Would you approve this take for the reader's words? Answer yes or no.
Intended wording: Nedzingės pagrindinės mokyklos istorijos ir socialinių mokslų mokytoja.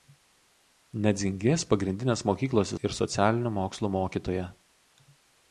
no